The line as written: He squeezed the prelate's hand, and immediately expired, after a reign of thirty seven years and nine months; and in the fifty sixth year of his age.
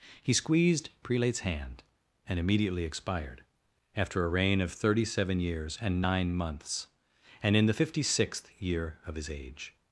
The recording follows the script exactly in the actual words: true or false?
false